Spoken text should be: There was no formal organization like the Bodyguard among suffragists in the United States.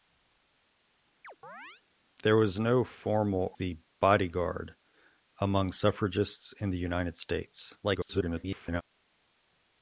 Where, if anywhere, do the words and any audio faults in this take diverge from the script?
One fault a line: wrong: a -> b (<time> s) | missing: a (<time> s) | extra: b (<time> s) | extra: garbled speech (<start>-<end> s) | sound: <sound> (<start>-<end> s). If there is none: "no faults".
sound: chirp (1.2-1.8 s)
missing: organization like (3.6 s)
extra: garbled speech (7.8-8.8 s)